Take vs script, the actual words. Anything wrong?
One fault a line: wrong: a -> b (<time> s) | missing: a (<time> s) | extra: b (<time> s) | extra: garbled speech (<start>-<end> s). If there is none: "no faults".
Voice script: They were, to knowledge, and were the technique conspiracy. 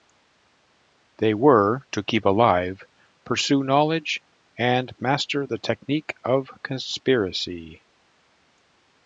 extra: keep alive pursue (2.0 s)
wrong: were -> master (5.0 s)
extra: of (6.2 s)